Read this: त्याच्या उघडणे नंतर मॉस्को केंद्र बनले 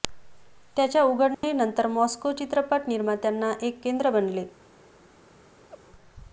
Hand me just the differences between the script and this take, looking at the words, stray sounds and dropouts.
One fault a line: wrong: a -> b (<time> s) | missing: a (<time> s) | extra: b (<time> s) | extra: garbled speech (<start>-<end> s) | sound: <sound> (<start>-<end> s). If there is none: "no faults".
sound: dropout (1.3-1.4 s)
extra: चित्रपट निर्मात्यांना एक (2.3 s)
sound: laugh (5.7-5.8 s)